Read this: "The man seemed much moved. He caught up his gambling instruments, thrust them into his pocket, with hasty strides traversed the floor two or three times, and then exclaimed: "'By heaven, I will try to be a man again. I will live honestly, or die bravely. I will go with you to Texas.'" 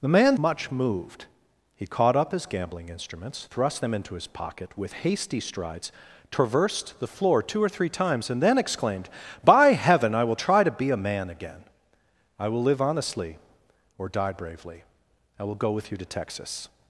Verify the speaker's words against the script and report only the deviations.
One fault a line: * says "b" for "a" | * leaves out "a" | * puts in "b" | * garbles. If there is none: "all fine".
* leaves out "seemed"